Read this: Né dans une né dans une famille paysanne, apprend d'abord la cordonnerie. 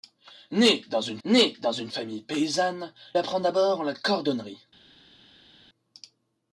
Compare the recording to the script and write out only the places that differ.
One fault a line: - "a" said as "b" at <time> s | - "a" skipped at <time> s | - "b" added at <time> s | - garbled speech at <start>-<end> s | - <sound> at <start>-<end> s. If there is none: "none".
none